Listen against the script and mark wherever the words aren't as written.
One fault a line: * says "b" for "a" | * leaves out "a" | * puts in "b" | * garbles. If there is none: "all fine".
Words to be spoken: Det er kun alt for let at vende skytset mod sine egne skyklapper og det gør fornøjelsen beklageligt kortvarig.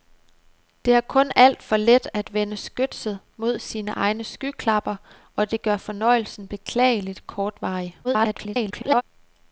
* garbles